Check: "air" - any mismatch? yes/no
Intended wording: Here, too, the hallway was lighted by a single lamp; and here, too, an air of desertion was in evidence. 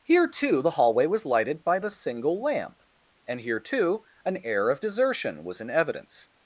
no